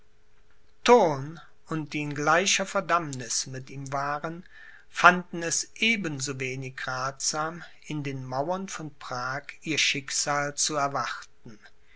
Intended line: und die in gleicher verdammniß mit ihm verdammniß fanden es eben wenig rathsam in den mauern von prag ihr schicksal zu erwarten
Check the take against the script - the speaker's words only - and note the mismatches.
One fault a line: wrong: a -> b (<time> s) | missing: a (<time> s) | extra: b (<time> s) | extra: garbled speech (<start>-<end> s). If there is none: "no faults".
wrong: verdammniß -> waren (3.9 s)
extra: so (6.2 s)